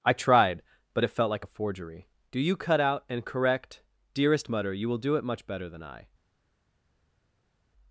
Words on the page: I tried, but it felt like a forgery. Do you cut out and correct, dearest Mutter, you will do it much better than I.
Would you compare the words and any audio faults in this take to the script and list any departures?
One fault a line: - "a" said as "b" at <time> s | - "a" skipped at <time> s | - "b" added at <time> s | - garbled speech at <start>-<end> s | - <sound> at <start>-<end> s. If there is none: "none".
none